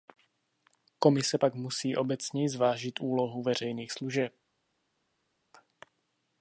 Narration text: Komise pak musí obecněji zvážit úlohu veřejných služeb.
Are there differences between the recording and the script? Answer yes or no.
no